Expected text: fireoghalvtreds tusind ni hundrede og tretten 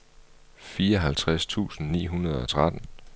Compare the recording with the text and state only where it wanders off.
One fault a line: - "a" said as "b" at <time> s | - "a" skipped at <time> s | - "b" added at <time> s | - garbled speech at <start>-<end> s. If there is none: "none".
none